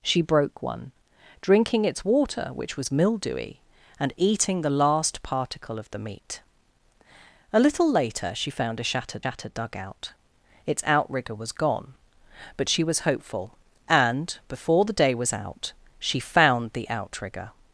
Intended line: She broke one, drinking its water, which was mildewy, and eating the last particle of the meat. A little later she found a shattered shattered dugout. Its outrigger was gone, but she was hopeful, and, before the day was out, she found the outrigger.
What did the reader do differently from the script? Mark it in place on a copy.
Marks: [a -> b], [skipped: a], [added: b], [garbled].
She broke one, drinking its water, which was mildewy, and eating the last particle of the meat. A little later she found a shattered shattered dugout. Its outrigger was gone, but she was hopeful, and, before the day was out, she found the outrigger.